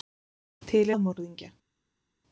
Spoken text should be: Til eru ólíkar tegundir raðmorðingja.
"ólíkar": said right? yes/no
no